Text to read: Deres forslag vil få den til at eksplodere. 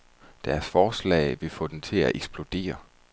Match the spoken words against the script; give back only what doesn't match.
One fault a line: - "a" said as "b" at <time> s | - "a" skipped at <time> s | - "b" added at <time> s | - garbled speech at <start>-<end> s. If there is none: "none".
none